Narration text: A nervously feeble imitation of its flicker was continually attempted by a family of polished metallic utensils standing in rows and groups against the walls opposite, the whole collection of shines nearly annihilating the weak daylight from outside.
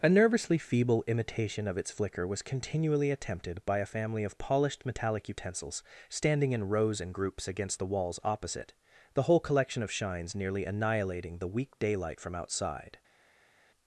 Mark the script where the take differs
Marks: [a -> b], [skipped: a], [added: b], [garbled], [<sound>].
A nervously feeble imitation of its flicker was continually attempted by a family of polished metallic utensils standing in rows and groups against the walls opposite, the whole collection of shines nearly annihilating the weak daylight from outside.